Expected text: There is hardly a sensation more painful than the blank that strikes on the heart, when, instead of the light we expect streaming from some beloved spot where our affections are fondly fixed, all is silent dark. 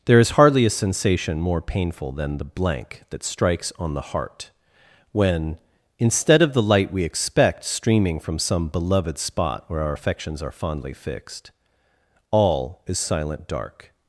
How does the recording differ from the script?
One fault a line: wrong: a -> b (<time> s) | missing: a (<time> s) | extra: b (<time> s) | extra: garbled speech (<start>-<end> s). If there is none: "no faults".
no faults